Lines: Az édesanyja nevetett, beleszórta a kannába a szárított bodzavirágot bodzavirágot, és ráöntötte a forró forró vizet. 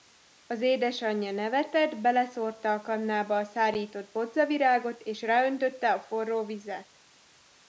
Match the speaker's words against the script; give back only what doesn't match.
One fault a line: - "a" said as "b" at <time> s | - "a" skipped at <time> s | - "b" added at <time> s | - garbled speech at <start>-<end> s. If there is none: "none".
- "bodzavirágot" skipped at 5.0 s
- "forró" skipped at 6.5 s